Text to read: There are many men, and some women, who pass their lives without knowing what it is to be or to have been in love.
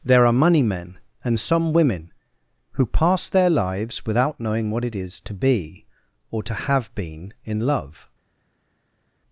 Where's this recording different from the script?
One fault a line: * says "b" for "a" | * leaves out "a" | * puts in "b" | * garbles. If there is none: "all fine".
* says "money" for "many"